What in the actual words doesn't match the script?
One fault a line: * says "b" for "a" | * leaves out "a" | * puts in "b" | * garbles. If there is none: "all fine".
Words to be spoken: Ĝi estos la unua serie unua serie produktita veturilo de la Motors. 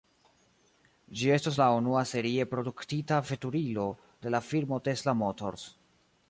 * leaves out "unua serie"
* puts in "firmo Tesla"